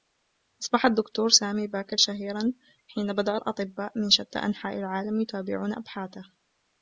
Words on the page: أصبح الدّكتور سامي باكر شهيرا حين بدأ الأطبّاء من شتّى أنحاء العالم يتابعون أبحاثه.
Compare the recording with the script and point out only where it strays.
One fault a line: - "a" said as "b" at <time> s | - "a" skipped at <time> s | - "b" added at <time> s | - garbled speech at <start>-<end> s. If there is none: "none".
none